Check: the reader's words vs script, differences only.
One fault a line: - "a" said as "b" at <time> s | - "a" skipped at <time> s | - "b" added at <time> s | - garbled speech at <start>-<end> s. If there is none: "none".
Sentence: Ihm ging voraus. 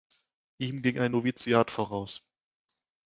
- "ein Noviziat" added at 1.0 s